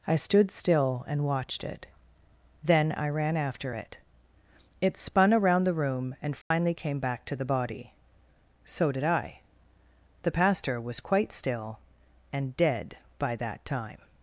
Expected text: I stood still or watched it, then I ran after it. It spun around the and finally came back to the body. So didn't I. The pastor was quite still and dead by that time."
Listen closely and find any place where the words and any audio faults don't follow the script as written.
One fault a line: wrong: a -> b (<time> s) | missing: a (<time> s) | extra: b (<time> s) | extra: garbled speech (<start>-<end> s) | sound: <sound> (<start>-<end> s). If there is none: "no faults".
wrong: or -> and (1.1 s)
extra: room (5.7 s)
sound: dropout (6.4-6.5 s)
wrong: didn't -> did (8.9 s)